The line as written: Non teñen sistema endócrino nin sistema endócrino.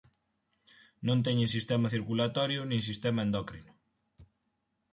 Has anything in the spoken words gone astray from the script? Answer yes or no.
yes